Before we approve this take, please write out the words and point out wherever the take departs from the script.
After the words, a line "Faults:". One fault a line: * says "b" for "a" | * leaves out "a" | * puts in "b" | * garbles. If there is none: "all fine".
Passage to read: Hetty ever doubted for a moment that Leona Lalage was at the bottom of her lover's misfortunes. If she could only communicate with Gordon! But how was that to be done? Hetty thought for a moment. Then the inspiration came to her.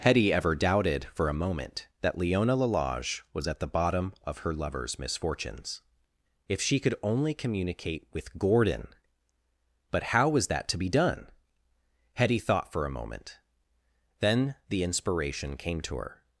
Hetty ever doubted for a moment that Leona Lalage was at the bottom of her lover's misfortunes. If she could only communicate with Gordon! But how was that to be done? Hetty thought for a moment. Then the inspiration came to her.
Faults:
all fine